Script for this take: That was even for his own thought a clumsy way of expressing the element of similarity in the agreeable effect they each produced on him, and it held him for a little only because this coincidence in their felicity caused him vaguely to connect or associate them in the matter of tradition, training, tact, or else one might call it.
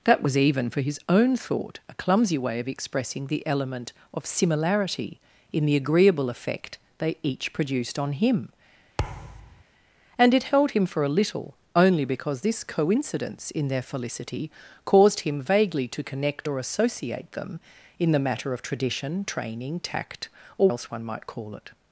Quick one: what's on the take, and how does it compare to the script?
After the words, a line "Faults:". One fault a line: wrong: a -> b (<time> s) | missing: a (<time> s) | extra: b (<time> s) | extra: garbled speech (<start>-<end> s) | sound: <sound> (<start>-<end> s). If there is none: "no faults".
That was even for his own thought a clumsy way of expressing the element of similarity in the agreeable effect they each produced on him, and it held him for a little only because this coincidence in their felicity caused him vaguely to connect or associate them in the matter of tradition, training, tact, or else one might call it.
Faults:
sound: thud (9.0-9.6 s)